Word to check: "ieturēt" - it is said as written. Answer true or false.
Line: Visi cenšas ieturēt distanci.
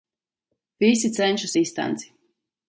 false